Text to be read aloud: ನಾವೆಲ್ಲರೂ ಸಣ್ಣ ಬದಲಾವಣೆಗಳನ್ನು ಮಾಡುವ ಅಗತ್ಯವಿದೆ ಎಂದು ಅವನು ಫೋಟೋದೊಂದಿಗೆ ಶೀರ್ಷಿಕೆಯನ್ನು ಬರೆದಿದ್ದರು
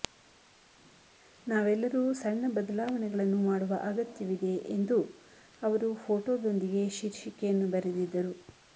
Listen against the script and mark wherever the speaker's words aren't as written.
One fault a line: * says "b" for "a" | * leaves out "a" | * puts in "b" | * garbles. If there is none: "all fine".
* says "ಅವರು" for "ಅವನು"